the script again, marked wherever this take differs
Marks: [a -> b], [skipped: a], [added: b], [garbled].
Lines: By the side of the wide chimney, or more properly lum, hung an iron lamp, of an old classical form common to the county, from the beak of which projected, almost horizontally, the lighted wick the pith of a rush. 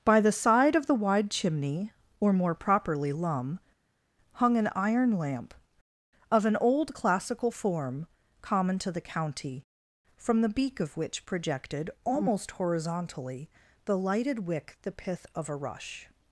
By the side of the wide chimney, or more properly lum, hung an iron lamp, of an old classical form common to the county, from the beak of which projected, almost horizontally, the lighted wick the pith of a rush.